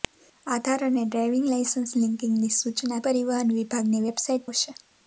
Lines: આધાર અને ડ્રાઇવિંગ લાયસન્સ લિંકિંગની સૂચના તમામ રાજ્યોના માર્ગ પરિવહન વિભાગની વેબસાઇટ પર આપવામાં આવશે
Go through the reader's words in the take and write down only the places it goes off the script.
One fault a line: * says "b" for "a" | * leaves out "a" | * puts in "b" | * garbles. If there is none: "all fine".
* leaves out "તમામ રાજ્યોના માર્ગ"
* leaves out "પર આપવામાં"